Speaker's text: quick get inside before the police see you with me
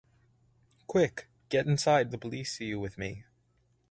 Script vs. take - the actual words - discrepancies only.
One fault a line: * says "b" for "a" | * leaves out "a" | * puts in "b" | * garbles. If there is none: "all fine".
* leaves out "before"